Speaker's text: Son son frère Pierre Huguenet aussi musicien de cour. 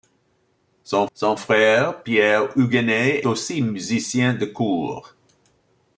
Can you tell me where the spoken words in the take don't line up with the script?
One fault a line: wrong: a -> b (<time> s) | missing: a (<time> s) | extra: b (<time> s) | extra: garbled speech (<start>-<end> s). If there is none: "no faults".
no faults